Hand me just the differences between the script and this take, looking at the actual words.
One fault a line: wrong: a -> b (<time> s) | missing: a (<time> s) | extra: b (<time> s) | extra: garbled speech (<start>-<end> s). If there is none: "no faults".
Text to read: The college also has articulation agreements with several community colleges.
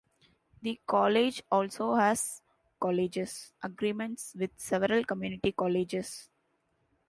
wrong: articulation -> colleges (2.8 s)